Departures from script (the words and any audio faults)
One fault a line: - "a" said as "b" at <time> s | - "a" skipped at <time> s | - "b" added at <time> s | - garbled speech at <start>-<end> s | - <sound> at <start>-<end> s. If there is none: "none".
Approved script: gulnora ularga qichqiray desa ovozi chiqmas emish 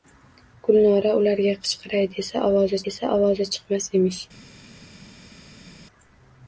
- "desa ovozi" added at 2.9 s